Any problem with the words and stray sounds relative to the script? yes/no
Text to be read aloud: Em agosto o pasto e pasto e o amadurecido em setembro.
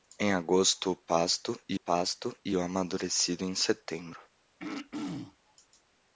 yes